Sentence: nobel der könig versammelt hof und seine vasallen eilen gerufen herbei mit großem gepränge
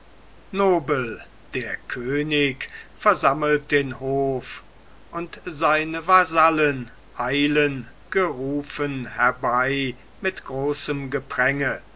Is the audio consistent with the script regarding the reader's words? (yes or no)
no